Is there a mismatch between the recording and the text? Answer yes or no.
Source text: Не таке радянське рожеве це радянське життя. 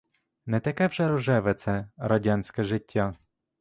yes